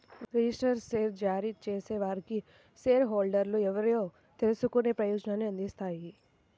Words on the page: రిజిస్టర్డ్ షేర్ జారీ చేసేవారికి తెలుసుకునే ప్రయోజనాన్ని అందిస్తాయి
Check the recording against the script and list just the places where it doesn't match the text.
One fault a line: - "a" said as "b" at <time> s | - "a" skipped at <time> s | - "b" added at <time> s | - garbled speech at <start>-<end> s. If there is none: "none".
- "షేర్ హోల్డర్లు ఎవరో" added at 2.9 s